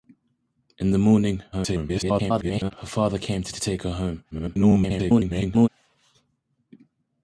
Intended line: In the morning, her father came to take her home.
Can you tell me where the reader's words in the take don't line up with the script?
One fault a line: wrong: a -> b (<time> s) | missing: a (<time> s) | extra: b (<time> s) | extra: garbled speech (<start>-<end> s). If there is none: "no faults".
extra: garbled speech (1.5-2.7 s)
extra: to (3.5 s)
extra: garbled speech (4.3-5.7 s)